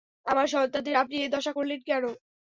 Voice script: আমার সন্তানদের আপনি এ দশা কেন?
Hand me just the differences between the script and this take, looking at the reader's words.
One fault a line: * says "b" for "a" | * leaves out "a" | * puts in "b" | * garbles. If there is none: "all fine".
* puts in "করলেন"